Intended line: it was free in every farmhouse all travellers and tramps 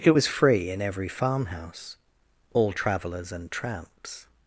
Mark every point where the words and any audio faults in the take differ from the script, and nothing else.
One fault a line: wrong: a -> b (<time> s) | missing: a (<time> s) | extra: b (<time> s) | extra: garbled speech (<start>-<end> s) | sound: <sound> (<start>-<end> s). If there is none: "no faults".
no faults